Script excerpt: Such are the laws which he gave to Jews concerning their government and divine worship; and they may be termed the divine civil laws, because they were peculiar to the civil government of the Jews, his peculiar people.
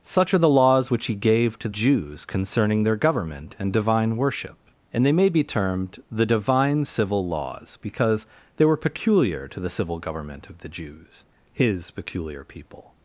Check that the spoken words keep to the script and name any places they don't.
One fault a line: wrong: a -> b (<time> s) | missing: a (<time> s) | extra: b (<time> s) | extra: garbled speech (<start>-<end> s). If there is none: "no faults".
no faults